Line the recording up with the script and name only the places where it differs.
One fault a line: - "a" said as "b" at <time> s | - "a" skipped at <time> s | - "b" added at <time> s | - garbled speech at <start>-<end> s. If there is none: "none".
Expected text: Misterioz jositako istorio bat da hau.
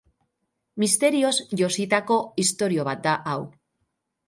none